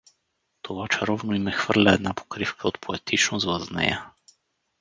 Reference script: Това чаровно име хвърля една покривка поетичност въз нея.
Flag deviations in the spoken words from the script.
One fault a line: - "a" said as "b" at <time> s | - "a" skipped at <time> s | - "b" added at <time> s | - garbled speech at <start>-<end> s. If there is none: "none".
- "от" added at 2.7 s